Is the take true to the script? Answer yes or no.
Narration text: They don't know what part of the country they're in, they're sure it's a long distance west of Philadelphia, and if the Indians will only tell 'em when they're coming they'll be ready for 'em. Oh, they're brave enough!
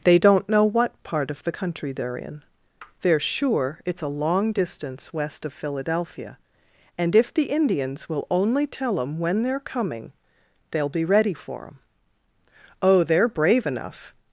yes